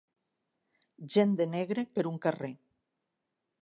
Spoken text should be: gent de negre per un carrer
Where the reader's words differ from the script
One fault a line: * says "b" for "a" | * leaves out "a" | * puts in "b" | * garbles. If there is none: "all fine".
all fine